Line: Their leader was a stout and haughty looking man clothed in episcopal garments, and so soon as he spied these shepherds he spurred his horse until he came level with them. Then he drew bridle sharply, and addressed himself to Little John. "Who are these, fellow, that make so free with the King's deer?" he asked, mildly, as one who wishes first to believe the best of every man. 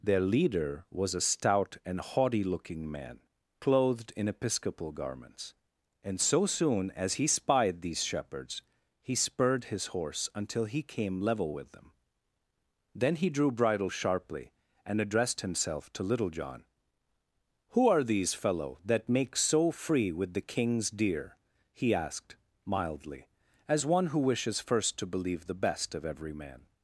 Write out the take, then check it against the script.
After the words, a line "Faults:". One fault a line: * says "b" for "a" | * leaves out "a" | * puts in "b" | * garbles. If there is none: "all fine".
Their leader was a stout and haughty looking man clothed in episcopal garments, and so soon as he spied these shepherds he spurred his horse until he came level with them. Then he drew bridle sharply, and addressed himself to Little John. "Who are these, fellow, that make so free with the King's deer?" he asked, mildly, as one who wishes first to believe the best of every man.
Faults:
all fine